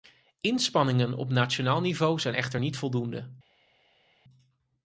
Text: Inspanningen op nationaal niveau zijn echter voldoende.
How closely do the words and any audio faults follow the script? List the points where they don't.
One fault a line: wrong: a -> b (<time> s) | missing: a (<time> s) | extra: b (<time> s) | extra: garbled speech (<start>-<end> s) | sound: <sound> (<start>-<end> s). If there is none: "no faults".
extra: niet (2.6 s)